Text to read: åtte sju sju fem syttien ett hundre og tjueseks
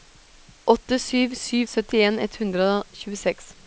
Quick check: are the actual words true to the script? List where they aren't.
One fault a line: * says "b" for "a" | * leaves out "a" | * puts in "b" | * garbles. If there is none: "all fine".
* leaves out "fem"